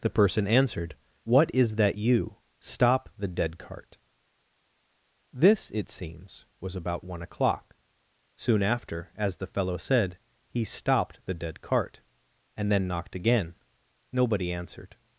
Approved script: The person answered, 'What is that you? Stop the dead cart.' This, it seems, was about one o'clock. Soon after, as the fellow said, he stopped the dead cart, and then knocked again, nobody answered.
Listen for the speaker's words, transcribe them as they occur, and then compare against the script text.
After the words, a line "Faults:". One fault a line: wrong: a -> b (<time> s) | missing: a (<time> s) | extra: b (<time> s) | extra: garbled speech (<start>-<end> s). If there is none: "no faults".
The person answered, 'What is that you? Stop the dead cart.' This, it seems, was about one o'clock. Soon after, as the fellow said, he stopped the dead cart, and then knocked again, nobody answered.
Faults:
no faults